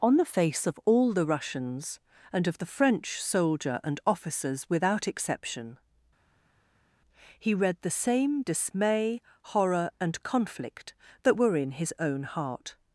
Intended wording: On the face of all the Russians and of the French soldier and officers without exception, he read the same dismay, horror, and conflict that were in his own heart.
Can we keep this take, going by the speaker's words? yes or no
yes